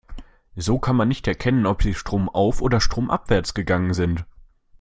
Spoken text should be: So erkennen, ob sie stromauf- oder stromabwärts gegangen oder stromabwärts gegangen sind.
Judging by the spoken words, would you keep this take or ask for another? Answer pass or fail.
fail